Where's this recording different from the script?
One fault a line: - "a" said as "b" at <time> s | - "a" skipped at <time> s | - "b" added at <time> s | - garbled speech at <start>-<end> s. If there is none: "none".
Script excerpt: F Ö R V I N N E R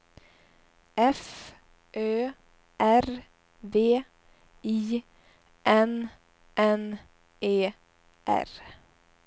none